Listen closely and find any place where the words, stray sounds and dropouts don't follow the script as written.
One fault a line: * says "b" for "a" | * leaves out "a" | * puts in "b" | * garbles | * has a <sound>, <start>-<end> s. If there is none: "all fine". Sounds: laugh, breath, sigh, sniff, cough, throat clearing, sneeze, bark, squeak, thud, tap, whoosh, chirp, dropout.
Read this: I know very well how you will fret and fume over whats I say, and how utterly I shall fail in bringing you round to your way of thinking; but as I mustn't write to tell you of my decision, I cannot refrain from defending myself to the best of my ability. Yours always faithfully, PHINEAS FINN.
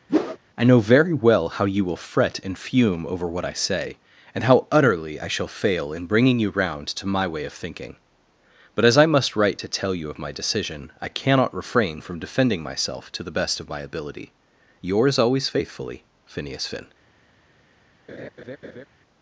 * has a whoosh, 0.1-0.4 s
* says "what" for "whats"
* says "my" for "your"
* says "must" for "mustn't"
* has a laugh, 18.1-18.9 s